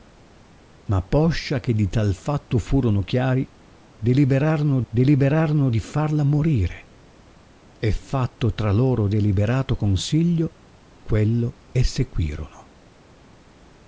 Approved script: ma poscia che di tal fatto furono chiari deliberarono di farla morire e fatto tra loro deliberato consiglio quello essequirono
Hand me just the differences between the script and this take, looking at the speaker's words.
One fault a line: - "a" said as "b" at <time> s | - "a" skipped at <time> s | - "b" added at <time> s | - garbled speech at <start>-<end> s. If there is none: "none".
- "deliberarono" added at 4.9 s